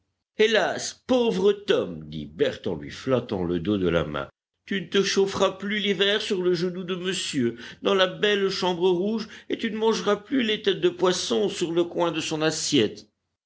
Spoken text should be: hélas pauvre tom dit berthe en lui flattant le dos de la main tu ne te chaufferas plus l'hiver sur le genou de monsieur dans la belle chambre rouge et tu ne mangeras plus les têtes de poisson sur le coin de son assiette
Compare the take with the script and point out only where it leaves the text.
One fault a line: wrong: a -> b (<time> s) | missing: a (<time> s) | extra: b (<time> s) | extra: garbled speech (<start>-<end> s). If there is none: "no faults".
no faults